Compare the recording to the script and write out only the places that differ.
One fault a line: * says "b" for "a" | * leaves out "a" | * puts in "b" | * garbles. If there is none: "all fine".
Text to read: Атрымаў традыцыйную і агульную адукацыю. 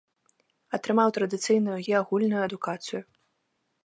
all fine